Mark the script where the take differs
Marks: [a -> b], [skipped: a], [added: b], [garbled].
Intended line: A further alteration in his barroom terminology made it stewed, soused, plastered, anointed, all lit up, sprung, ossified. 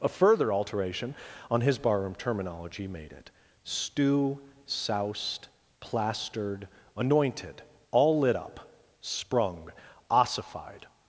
A further alteration [in -> on] his barroom terminology made it [stewed, -> stew] soused, plastered, anointed, all lit up, sprung, ossified.